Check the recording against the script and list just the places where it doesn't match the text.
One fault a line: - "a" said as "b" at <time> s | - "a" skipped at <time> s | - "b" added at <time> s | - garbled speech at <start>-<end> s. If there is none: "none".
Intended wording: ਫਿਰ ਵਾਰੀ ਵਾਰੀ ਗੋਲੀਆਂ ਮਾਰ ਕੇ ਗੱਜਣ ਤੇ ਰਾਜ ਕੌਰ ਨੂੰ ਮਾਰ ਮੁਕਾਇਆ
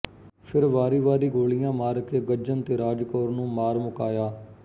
none